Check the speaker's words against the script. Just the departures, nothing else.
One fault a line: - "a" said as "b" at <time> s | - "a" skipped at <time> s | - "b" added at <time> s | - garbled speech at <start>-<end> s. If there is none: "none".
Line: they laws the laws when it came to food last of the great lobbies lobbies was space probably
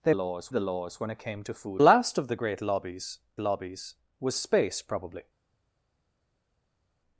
none